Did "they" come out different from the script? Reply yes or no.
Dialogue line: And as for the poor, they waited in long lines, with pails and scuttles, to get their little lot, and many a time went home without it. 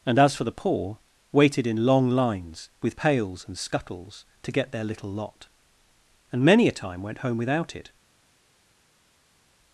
yes